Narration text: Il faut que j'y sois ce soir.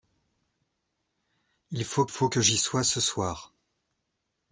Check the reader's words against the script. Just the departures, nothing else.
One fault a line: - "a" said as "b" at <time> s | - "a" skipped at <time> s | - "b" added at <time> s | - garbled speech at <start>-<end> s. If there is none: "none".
- "faut" added at 2.1 s